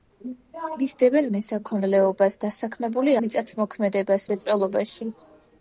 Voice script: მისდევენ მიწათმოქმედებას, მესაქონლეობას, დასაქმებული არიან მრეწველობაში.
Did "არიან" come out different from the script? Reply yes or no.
yes